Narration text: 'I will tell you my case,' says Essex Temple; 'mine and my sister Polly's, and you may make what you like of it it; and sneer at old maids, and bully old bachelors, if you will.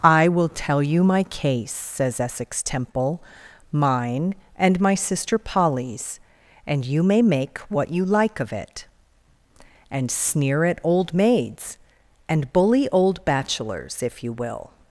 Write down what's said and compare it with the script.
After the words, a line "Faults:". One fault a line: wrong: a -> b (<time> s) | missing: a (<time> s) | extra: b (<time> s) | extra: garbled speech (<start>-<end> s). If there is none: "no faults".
'I will tell you my case,' says Essex Temple; 'mine and my sister Polly's, and you may make what you like of it; and sneer at old maids, and bully old bachelors, if you will.
Faults:
missing: it (8.8 s)